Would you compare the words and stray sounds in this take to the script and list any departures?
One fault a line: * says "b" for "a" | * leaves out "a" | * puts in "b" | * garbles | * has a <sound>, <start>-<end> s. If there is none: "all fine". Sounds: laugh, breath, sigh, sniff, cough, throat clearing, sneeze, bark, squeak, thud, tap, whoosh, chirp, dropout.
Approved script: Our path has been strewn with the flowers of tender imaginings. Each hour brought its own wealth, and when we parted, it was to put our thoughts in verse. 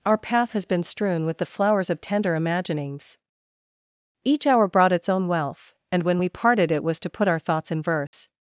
* has a dropout, 8.1-8.1 s